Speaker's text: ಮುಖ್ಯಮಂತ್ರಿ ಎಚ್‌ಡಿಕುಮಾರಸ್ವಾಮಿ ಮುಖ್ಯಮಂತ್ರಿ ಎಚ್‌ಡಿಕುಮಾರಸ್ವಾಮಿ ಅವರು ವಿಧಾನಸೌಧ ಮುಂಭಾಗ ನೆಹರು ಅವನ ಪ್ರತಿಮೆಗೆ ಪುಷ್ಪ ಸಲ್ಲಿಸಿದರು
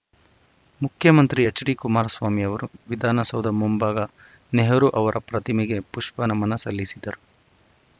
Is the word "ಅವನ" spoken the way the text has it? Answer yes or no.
no